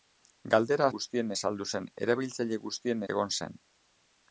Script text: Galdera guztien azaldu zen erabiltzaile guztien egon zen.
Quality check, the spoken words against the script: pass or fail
pass